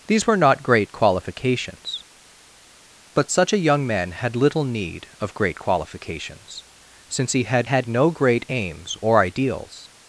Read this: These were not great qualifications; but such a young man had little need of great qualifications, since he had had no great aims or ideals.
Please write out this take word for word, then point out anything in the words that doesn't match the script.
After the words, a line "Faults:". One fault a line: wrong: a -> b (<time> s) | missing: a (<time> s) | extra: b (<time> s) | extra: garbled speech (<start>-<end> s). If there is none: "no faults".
These were not great qualifications; but such a young man had little need of great qualifications, since he had had no great aims or ideals.
Faults:
no faults